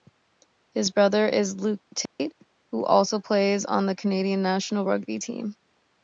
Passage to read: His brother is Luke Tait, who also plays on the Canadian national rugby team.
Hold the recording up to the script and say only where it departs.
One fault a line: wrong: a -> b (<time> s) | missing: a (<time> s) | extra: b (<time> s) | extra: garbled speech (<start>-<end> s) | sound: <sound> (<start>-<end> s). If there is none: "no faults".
sound: dropout (2.1-2.2 s)